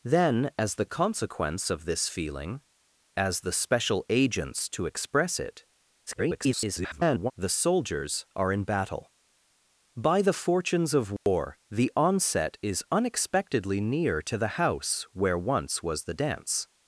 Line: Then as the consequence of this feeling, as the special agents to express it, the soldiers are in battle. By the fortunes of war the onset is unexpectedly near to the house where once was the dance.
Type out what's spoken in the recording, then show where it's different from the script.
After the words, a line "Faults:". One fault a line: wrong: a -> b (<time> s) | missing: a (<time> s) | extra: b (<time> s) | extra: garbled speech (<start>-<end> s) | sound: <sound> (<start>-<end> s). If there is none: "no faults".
Then as the consequence of this feeling, as the special agents to express it, [garbled] the soldiers are in battle. By the fortunes of war the onset is unexpectedly near to the house where once was the dance.
Faults:
extra: garbled speech (6.1-7.3 s)
sound: dropout (11.2-11.3 s)